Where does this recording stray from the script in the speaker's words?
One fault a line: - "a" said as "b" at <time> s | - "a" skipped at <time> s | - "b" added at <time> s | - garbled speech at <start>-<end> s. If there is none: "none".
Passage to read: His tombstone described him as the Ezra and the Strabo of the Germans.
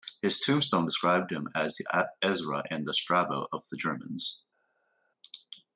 none